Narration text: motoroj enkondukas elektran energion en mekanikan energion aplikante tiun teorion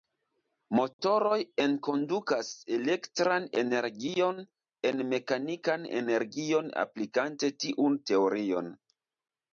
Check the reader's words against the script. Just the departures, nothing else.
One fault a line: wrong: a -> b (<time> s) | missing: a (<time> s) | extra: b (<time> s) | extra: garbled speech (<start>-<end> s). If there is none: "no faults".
no faults